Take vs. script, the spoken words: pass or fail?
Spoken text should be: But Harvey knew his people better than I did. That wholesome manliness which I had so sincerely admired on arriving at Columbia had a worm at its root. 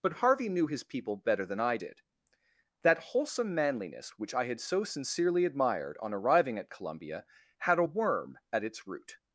pass